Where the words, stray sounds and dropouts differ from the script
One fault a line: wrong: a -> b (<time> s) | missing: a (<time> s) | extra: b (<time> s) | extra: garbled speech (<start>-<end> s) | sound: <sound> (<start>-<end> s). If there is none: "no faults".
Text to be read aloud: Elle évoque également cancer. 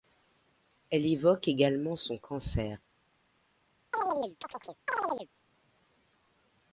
extra: son (1.9 s)
sound: chirp (3.9-5.3 s)